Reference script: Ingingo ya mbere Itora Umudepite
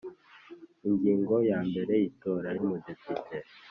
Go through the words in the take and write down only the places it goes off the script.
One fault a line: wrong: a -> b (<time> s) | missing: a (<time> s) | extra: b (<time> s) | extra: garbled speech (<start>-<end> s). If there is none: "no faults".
no faults